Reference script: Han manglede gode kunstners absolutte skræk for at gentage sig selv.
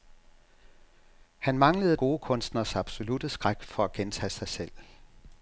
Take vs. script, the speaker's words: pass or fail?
pass